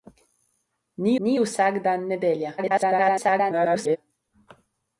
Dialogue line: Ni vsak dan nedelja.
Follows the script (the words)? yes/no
no